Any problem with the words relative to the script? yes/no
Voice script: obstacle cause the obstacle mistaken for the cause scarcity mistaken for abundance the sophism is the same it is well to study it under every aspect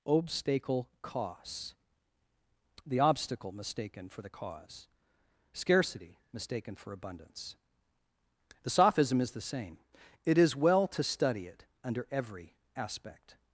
no